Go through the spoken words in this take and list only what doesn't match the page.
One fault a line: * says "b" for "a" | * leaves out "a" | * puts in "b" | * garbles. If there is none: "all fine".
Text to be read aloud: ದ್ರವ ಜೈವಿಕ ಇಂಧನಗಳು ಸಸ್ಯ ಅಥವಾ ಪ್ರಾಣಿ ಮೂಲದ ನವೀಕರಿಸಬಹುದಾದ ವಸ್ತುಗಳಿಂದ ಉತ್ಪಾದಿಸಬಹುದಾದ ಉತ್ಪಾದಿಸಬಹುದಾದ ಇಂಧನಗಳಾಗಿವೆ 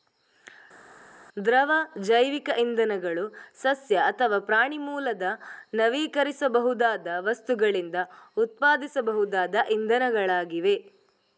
* leaves out "ಉತ್ಪಾದಿಸಬಹುದಾದ"